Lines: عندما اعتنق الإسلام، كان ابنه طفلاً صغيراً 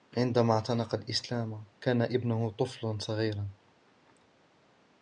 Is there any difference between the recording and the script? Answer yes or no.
no